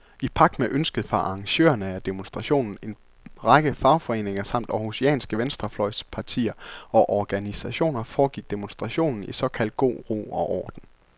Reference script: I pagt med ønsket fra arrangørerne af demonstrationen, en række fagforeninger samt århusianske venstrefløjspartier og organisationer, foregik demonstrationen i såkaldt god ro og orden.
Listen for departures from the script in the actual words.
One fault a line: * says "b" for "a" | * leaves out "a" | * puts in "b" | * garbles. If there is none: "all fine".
all fine